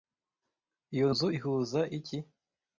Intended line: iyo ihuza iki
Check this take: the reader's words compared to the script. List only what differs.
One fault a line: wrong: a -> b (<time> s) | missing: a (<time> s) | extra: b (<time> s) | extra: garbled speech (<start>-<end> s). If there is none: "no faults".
extra: nzu (1.1 s)